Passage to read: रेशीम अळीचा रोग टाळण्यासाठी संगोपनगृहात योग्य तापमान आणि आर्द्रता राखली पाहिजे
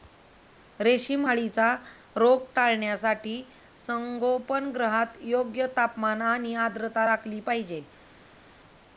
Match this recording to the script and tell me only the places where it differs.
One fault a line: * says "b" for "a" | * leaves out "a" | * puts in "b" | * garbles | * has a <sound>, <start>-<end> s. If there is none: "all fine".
all fine